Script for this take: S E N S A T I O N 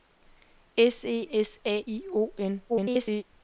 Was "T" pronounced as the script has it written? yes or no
no